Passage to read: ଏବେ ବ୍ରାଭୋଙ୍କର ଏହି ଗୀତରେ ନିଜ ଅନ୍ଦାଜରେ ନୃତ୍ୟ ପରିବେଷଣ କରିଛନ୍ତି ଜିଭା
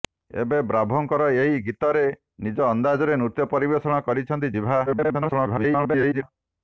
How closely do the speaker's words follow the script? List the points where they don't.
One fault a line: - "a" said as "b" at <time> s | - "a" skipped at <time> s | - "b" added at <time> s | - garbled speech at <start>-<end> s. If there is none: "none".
- garbled speech at 4.9-6.2 s